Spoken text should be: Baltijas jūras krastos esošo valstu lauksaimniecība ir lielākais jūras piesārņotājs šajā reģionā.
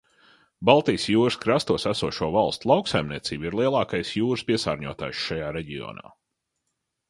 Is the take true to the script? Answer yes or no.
yes